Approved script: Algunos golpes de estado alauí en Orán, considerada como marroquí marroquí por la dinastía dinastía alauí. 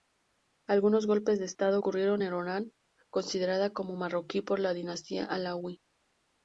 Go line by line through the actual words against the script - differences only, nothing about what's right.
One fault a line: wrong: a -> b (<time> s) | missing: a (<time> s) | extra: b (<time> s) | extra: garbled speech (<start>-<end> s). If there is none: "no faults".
wrong: alauí -> ocurrieron (1.7 s)
missing: marroquí (4.4 s)
missing: dinastía (5.2 s)